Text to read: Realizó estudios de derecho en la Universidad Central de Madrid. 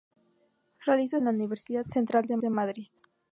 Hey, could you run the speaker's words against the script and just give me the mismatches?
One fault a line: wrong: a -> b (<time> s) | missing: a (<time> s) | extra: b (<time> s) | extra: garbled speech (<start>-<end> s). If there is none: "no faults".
missing: estudios de derecho (1.2 s)
extra: de (2.4 s)